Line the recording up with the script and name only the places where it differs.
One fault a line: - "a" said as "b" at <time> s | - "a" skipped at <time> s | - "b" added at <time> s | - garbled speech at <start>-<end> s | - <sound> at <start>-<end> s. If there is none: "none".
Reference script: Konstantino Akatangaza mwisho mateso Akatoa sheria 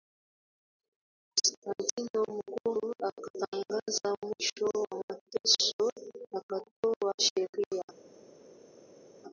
- "Mkuu" added at 2.3 s
- "wa" added at 4.7 s